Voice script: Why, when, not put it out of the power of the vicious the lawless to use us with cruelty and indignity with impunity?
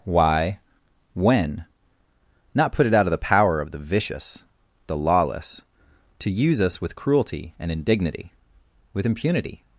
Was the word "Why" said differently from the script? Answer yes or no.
no